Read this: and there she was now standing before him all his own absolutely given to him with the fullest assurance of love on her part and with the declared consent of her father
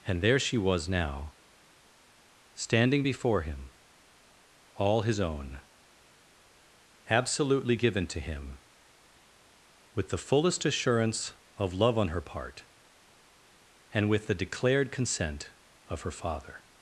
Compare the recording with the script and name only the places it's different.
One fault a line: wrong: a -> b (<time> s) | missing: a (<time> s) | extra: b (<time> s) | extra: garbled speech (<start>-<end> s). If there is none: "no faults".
no faults